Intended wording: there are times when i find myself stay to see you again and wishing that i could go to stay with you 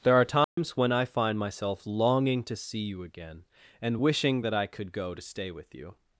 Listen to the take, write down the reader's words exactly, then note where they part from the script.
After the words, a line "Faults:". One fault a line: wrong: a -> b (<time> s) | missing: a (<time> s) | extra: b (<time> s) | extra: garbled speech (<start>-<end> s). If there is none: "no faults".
there are times when i find myself longing to see you again and wishing that i could go to stay with you
Faults:
wrong: stay -> longing (1.9 s)